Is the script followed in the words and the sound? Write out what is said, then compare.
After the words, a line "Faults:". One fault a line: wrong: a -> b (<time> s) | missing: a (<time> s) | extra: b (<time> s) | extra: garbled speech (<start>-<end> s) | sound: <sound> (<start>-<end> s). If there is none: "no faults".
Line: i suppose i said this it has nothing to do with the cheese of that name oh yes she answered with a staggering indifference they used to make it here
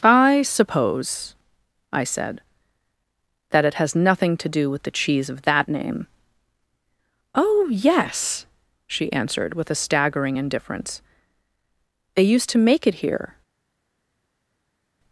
i suppose i said that it has nothing to do with the cheese of that name oh yes she answered with a staggering indifference they used to make it here
Faults:
wrong: this -> that (3.5 s)